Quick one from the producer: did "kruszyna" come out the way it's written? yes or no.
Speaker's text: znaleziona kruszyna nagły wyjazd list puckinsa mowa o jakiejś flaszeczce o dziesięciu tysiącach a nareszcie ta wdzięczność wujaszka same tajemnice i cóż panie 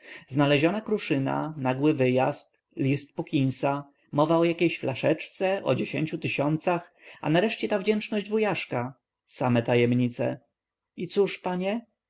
yes